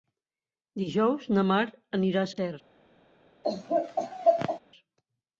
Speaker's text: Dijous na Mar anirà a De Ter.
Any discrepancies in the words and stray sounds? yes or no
yes